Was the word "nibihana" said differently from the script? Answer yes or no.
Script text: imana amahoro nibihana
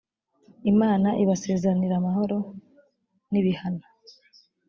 no